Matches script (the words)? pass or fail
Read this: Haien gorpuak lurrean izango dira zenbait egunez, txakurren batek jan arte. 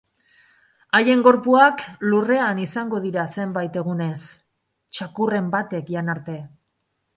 pass